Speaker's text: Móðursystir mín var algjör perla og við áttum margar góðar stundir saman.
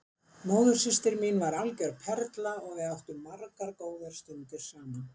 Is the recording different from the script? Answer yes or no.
no